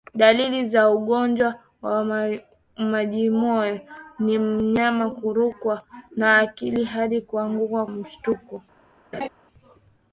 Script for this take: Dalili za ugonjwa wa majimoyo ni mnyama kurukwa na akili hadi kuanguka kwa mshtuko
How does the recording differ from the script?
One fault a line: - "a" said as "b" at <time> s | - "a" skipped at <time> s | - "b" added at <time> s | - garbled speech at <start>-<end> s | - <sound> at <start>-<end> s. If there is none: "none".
- "kwa" skipped at 7.8 s
- laugh at 9.1-9.3 s